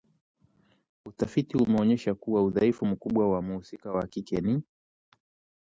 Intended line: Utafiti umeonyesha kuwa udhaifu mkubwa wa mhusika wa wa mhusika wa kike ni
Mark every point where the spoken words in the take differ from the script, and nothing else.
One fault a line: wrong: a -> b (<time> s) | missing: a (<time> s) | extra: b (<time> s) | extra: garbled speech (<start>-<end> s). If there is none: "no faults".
missing: wa mhusika wa (4.1 s)